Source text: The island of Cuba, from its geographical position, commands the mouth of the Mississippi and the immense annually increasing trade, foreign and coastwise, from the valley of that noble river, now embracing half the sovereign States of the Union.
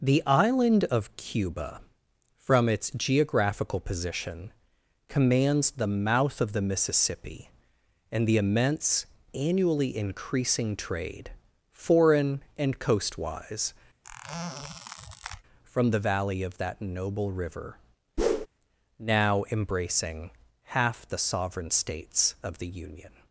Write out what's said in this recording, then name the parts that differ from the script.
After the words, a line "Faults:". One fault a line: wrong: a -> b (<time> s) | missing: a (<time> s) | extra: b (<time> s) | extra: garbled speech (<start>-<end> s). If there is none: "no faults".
The island of Cuba, from its geographical position, commands the mouth of the Mississippi and the immense annually increasing trade, foreign and coastwise, from the valley of that noble river, now embracing half the sovereign States of the Union.
Faults:
no faults